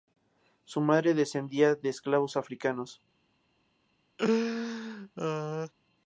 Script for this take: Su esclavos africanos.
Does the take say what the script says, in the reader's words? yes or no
no